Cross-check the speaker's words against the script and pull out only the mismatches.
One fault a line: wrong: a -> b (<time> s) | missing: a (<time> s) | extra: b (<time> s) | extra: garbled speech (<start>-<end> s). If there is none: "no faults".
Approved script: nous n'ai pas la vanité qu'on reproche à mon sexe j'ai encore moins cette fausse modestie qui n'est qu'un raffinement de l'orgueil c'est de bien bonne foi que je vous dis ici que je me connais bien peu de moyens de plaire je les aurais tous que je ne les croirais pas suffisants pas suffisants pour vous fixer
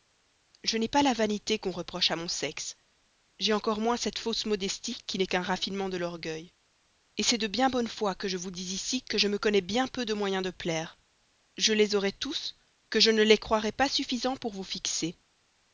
wrong: nous -> je (0.6 s)
missing: pas suffisants (14.4 s)